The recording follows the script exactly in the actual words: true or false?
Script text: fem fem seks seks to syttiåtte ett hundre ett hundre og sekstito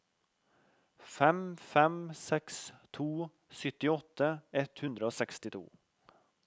false